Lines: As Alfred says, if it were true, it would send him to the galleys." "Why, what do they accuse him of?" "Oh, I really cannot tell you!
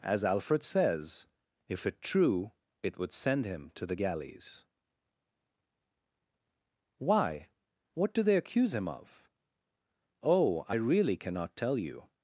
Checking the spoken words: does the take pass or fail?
fail